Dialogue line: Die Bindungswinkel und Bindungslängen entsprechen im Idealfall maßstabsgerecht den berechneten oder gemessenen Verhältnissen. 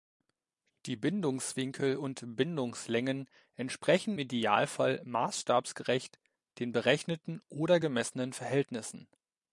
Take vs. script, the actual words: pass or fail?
fail